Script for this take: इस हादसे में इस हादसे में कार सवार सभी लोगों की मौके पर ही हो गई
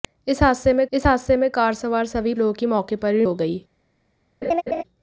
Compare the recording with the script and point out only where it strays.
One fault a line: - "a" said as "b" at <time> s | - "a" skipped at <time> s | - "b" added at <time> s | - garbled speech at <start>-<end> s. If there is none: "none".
none